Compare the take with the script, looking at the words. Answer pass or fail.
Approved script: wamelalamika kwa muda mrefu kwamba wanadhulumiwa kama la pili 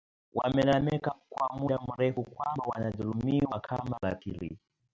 pass